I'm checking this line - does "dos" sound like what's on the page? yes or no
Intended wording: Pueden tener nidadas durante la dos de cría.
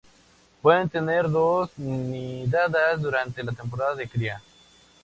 no